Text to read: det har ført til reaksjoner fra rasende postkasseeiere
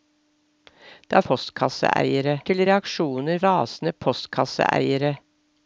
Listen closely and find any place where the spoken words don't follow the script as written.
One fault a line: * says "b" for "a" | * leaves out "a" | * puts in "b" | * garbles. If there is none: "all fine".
* says "postkasseeiere" for "ført"
* leaves out "fra"